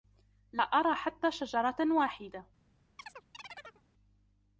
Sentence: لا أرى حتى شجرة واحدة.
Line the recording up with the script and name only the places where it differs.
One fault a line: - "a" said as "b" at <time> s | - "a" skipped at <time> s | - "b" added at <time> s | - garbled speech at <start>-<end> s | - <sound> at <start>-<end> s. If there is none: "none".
- chirp at 3.0-3.8 s